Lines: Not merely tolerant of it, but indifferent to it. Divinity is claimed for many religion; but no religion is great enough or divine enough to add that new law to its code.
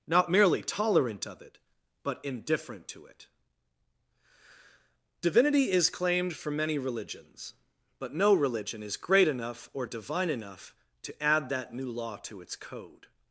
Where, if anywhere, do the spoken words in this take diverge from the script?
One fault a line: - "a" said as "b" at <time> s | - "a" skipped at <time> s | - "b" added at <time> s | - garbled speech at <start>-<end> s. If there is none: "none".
- "religion" said as "religions" at 6.8 s